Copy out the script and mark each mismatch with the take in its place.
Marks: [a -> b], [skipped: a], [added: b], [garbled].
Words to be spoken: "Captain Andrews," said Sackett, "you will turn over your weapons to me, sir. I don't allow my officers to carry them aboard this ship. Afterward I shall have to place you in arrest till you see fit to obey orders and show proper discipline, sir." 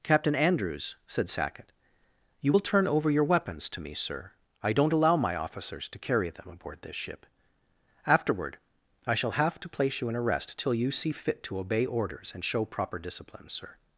"Captain Andrews," said Sackett, "you will turn over your weapons to me, sir. I don't allow my officers to carry them aboard this ship. Afterward I shall have to place you in arrest till you see fit to obey orders and show proper discipline, sir."